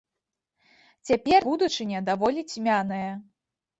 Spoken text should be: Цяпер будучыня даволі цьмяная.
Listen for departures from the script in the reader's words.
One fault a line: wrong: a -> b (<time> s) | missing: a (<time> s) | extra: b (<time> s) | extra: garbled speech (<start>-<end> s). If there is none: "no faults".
no faults